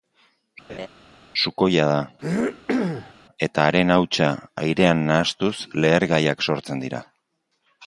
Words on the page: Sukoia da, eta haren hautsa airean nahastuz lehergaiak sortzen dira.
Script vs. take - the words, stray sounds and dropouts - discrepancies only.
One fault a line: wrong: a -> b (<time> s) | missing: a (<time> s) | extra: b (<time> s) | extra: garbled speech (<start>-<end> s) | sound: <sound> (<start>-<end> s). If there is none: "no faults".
sound: laugh (0.7-0.9 s)
sound: throat clearing (2.2-3.1 s)